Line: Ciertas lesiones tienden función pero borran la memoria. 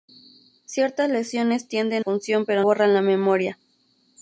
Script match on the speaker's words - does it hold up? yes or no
yes